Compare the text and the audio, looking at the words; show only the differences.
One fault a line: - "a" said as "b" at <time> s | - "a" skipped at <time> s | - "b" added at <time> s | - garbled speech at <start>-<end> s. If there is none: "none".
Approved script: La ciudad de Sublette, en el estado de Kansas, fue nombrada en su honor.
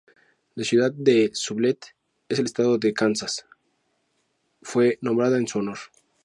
none